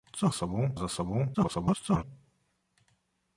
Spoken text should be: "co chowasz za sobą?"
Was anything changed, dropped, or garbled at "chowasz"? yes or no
yes